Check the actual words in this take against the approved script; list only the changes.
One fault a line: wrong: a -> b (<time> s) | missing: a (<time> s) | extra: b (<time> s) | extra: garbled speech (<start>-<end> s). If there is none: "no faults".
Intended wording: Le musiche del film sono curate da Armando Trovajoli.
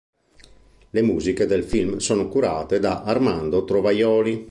no faults